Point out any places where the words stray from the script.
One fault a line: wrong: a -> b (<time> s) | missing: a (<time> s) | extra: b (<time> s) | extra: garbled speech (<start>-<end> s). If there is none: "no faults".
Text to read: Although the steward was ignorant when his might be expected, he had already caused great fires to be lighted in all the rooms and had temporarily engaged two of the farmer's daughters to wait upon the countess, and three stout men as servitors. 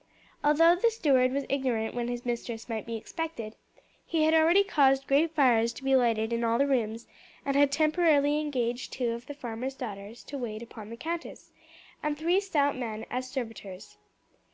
extra: mistress (2.2 s)